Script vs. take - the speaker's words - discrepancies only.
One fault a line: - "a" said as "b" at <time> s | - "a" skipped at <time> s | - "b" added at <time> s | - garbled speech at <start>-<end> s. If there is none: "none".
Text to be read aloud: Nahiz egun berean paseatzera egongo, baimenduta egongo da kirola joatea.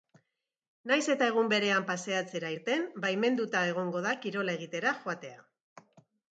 - "eta" added at 1.1 s
- "egongo" said as "irten" at 2.5 s
- "egitera" added at 4.6 s